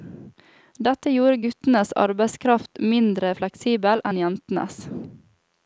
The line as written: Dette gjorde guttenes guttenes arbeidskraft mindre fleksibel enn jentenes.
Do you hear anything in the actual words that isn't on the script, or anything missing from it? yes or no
yes